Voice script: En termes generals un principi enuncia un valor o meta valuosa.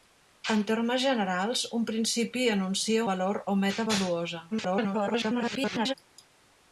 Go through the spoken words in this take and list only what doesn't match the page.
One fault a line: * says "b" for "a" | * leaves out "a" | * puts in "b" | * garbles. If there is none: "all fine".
* leaves out "un"
* garbles